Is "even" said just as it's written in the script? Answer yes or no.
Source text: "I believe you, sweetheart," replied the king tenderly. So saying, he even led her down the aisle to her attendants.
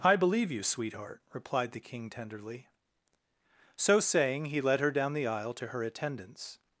no